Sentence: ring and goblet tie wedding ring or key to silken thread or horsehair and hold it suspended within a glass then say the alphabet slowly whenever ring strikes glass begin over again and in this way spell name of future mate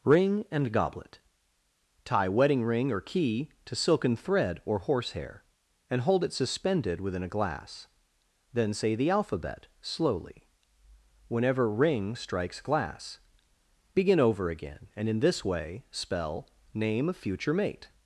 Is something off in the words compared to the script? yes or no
no